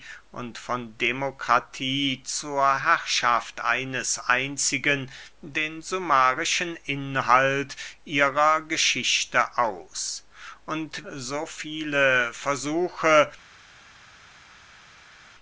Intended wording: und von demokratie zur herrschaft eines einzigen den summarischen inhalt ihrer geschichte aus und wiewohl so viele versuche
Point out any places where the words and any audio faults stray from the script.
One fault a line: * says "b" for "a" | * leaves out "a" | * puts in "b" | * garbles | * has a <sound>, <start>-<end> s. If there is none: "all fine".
* leaves out "wiewohl"